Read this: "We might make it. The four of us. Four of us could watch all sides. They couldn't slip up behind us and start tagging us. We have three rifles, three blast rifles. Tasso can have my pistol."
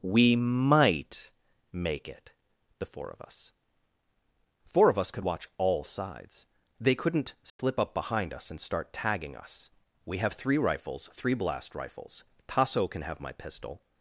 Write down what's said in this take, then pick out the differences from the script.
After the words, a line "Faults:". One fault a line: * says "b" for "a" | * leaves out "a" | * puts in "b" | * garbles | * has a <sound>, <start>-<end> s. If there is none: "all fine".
"We might make it. The four of us. Four of us could watch all sides. They couldn't slip up behind us and start tagging us. We have three rifles, three blast rifles. Tasso can have my pistol."
Faults:
* has a dropout, 7.5-7.6 s